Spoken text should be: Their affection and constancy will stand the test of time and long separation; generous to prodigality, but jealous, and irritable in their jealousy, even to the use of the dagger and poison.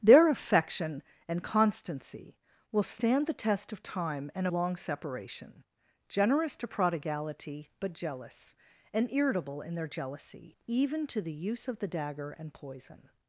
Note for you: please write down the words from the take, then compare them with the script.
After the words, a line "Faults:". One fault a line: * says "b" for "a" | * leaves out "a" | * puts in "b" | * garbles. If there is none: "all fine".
Their affection and constancy will stand the test of time and long separation; generous to prodigality, but jealous, and irritable in their jealousy, even to the use of the dagger and poison.
Faults:
all fine